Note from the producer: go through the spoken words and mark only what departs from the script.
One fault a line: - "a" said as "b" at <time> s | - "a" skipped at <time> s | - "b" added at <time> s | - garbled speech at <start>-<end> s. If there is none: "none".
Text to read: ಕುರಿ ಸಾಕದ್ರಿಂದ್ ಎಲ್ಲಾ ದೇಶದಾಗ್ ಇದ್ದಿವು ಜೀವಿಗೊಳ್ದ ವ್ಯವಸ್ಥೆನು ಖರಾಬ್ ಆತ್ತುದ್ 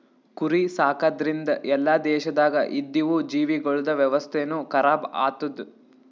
none